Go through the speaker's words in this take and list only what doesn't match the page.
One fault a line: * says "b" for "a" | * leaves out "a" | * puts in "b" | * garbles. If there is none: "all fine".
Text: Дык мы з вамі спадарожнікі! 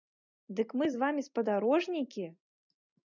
all fine